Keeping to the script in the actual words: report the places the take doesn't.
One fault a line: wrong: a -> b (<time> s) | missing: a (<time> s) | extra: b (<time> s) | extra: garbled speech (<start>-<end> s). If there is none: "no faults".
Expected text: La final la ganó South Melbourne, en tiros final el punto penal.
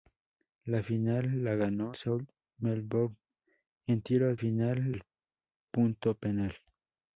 no faults